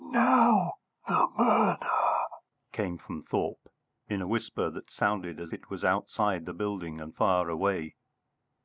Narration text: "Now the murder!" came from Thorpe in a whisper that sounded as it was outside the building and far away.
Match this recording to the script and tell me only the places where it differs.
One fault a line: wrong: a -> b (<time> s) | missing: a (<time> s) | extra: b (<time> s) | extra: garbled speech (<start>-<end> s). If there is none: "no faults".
no faults